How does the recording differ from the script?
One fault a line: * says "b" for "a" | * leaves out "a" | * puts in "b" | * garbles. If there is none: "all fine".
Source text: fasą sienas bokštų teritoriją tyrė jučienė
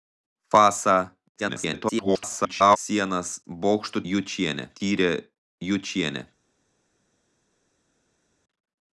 * garbles
* says "jučienė" for "teritoriją"